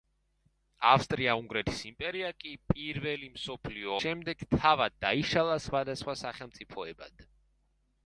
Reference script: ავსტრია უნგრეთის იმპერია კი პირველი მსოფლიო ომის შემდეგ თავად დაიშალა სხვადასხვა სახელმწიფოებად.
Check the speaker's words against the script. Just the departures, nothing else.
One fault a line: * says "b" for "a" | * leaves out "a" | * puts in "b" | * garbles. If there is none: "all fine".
* leaves out "ომის"